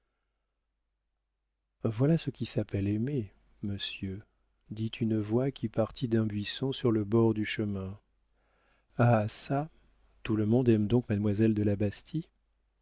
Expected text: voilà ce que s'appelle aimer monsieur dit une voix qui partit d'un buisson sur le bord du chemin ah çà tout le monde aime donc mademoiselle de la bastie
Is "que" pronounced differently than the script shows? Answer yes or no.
yes